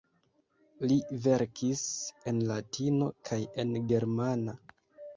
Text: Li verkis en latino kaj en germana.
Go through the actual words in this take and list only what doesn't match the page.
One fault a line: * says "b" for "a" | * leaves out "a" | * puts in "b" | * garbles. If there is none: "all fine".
all fine